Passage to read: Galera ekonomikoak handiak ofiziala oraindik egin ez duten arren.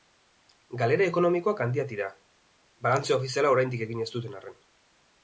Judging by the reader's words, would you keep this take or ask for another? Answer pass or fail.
fail